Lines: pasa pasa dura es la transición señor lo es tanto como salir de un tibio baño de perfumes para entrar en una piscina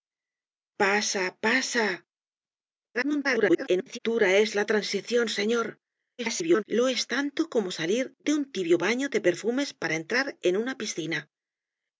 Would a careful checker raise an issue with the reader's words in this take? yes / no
yes